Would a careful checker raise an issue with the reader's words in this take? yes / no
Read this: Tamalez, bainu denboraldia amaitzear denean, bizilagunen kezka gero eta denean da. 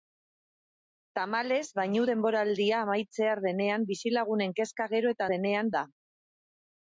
no